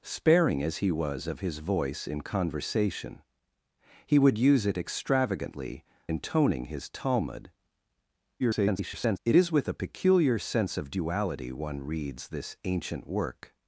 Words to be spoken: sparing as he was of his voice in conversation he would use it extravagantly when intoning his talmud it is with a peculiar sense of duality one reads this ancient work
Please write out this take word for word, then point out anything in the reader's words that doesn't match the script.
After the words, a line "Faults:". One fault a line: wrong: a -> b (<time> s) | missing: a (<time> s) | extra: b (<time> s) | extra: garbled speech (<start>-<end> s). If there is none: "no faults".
sparing as he was of his voice in conversation he would use it extravagantly intoning his talmud [garbled] it is with a peculiar sense of duality one reads this ancient work
Faults:
missing: when (5.8 s)
extra: garbled speech (8.4-9.2 s)